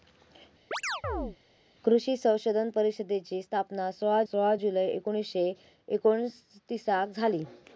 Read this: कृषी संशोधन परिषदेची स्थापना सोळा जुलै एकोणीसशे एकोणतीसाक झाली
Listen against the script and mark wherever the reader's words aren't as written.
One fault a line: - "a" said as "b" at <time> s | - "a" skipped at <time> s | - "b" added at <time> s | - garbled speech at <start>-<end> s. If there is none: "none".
- "सोळा" added at 4.2 s